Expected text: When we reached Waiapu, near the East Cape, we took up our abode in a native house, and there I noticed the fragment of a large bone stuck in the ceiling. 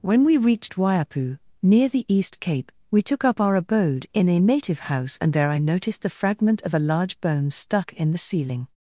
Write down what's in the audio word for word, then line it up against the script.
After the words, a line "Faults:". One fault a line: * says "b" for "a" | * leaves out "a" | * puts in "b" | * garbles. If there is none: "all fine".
When we reached Waiapu, near the East Cape, we took up our abode in a native house, and there I noticed the fragment of a large bone stuck in the ceiling.
Faults:
all fine